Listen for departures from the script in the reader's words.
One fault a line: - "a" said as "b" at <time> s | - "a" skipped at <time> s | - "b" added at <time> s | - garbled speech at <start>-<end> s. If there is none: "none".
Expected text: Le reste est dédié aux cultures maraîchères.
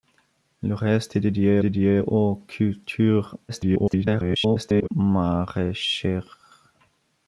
- "dédié" added at 1.6 s
- garbled speech at 3.5-4.9 s